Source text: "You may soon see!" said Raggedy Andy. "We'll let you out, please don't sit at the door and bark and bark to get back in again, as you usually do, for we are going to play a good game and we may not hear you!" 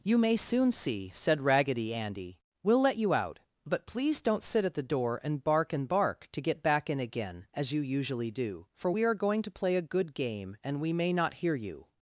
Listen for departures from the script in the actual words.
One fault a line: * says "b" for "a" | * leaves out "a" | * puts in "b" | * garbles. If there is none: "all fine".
* puts in "but"